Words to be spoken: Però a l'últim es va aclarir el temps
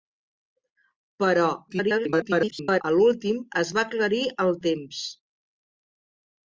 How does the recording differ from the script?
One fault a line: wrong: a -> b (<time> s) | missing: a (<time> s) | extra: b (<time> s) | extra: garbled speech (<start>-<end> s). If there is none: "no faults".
extra: garbled speech (1.7-2.8 s)